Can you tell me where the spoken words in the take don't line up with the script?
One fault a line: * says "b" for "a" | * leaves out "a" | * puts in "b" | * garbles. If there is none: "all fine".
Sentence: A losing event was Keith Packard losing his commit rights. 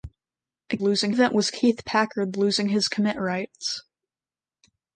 all fine